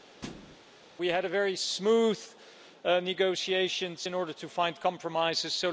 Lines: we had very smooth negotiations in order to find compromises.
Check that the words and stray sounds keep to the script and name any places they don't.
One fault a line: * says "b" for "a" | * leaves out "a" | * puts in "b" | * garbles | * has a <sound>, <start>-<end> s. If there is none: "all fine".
* has a thud, 0.2-0.6 s